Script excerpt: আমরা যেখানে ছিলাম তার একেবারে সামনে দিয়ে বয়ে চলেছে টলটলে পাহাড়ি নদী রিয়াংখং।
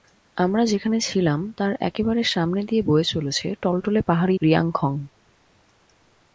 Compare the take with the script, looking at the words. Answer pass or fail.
fail